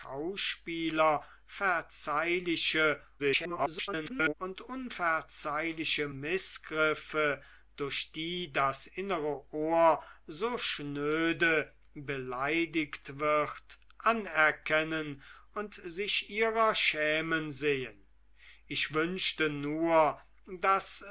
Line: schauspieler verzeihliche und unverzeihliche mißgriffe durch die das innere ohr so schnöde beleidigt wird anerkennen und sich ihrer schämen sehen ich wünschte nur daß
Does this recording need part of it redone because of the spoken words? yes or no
yes